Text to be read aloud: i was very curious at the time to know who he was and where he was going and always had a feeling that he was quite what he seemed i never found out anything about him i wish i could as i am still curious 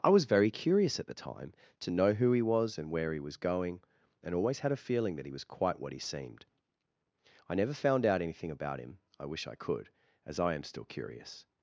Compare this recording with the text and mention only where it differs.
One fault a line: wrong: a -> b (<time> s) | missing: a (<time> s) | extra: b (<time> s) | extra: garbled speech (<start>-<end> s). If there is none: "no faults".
no faults